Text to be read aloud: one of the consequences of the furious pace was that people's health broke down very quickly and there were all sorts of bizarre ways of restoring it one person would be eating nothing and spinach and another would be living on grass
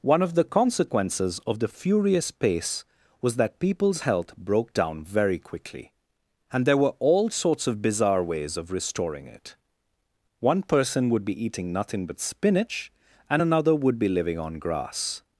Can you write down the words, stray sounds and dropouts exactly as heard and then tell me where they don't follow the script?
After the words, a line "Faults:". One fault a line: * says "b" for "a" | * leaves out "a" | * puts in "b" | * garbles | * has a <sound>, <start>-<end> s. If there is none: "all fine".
one of the consequences of the furious pace was that people's health broke down very quickly and there were all sorts of bizarre ways of restoring it one person would be eating nothing but spinach and another would be living on grass
Faults:
* says "but" for "and"